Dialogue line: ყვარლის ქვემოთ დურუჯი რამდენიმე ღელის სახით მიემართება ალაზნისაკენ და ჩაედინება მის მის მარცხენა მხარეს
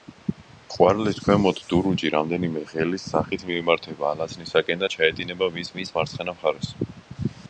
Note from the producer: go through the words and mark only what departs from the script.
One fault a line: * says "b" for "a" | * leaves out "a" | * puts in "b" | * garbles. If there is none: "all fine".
all fine